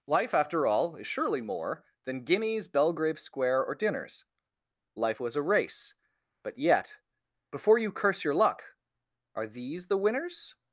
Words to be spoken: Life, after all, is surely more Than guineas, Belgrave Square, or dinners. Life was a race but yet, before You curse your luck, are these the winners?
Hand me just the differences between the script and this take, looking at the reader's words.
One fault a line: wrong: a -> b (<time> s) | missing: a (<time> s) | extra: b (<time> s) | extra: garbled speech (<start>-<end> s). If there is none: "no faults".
no faults